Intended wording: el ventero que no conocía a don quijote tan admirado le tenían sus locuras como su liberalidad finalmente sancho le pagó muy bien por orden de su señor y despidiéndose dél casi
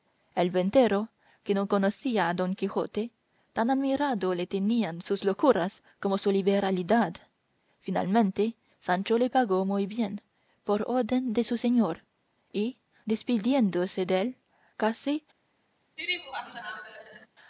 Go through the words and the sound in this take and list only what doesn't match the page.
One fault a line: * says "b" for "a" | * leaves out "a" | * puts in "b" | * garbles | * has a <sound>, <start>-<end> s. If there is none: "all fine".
* has a laugh, 16.0-17.3 s